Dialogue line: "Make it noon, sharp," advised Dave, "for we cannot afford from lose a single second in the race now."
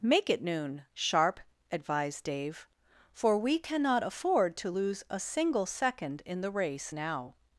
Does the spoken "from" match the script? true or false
false